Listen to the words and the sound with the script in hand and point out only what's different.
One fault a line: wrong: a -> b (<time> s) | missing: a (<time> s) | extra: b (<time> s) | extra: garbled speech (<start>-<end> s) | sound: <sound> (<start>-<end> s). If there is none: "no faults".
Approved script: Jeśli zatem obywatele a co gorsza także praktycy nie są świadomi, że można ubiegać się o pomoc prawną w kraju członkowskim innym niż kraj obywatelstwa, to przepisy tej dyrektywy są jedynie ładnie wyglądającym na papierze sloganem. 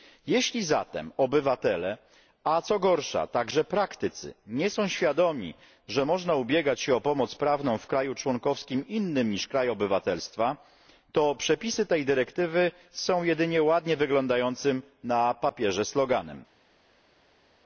no faults